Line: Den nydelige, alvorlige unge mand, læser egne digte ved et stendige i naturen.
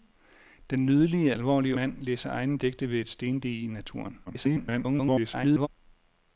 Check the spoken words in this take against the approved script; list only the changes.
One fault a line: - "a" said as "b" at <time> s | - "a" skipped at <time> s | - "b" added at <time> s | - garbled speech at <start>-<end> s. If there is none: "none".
- "unge" skipped at 1.8 s
- garbled speech at 4.3-5.7 s